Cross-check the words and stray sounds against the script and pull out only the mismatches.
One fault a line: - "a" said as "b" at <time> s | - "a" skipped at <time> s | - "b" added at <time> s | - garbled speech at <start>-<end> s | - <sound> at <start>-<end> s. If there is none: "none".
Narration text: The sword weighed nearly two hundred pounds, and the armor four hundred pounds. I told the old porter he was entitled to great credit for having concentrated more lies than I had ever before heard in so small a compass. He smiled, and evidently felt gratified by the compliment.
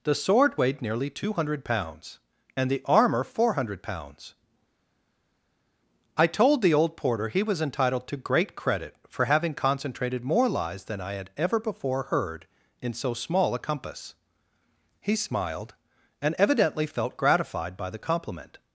none